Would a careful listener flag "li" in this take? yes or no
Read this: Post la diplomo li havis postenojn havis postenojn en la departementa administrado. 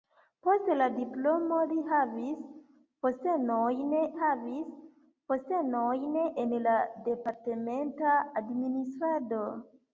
no